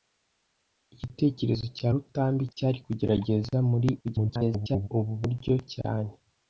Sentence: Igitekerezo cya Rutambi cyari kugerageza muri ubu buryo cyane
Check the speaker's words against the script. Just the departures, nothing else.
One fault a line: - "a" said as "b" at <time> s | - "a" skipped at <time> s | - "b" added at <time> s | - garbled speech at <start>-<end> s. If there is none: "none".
- garbled speech at 4.0-4.9 s